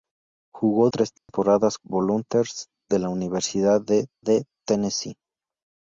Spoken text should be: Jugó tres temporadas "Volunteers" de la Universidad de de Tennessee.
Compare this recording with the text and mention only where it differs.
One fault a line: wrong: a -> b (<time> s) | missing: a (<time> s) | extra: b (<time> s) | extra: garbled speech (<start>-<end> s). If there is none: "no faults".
no faults